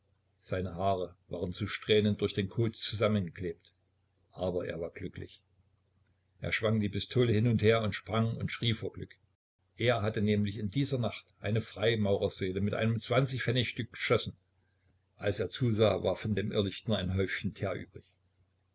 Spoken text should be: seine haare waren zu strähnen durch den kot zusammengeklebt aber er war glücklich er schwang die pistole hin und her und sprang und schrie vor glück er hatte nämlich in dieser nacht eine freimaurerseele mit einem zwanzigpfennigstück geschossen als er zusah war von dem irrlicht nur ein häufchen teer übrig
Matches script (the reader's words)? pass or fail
pass